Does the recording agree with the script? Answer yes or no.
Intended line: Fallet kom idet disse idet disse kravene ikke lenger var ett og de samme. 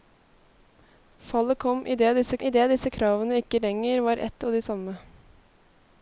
yes